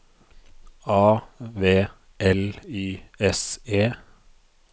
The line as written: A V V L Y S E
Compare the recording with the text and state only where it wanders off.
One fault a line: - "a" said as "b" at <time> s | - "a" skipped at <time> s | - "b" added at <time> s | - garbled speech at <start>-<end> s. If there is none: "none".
- "V" skipped at 1.9 s